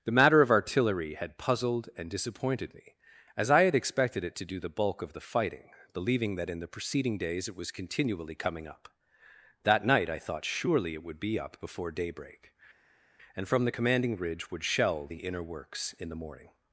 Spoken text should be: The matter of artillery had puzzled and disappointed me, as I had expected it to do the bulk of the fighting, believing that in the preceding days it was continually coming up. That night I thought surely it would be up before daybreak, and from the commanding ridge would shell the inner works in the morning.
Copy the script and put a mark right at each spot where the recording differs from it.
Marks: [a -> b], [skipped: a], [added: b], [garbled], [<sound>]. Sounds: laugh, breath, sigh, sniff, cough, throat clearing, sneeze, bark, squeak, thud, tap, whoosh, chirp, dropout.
The matter of artillery had puzzled and disappointed me, as I had expected it to do the bulk of the fighting, believing that in the preceding days it was continually coming up. That night I thought surely it would be up before daybreak, and from the commanding ridge would shell the inner works in the morning.